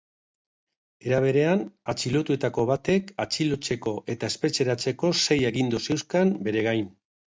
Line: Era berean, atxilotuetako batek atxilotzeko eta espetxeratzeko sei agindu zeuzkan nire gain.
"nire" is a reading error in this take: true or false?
true